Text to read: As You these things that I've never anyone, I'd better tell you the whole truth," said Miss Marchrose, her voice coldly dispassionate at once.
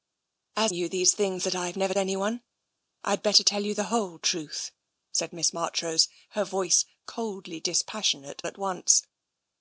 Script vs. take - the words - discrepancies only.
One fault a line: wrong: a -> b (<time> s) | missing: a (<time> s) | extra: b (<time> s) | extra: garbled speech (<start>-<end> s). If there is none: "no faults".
no faults